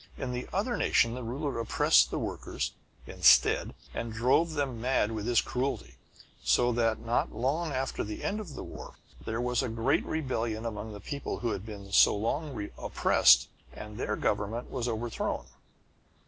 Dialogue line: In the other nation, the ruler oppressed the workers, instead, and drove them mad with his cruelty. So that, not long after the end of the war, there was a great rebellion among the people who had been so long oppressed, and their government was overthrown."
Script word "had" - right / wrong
right